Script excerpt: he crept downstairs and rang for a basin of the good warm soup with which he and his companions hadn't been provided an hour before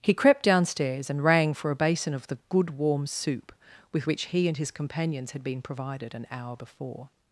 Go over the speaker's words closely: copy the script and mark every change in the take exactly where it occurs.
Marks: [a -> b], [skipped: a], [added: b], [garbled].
he crept downstairs and rang for a basin of the good warm soup with which he and his companions [hadn't -> had] been provided an hour before